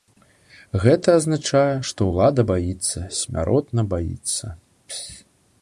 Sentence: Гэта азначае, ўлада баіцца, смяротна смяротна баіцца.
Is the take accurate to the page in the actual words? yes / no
no